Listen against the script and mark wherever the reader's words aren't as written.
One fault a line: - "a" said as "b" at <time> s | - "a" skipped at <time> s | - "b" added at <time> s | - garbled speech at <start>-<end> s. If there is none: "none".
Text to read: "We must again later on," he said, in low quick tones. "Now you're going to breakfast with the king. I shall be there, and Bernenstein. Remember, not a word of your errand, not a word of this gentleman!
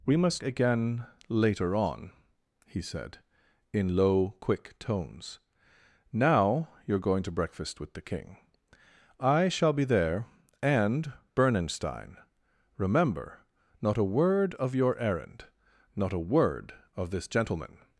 none